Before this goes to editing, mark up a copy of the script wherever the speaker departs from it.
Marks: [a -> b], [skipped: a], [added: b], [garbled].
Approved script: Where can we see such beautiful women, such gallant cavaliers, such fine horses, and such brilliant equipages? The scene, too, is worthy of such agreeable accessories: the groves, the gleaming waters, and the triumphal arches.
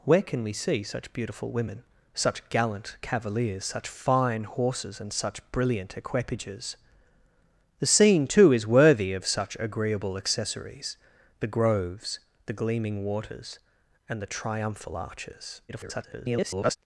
Where can we see such beautiful women, such gallant cavaliers, such fine horses, and such brilliant equipages? The scene, too, is worthy of such agreeable accessories: the groves, the gleaming waters, and the triumphal arches. [garbled]